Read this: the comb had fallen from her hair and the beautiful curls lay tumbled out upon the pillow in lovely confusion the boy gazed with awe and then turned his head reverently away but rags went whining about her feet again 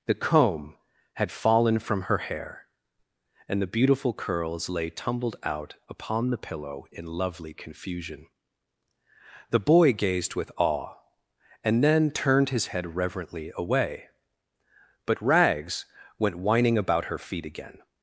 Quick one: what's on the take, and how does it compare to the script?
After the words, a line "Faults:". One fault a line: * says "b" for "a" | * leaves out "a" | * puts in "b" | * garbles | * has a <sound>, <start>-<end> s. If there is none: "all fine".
the comb had fallen from her hair and the beautiful curls lay tumbled out upon the pillow in lovely confusion the boy gazed with awe and then turned his head reverently away but rags went whining about her feet again
Faults:
all fine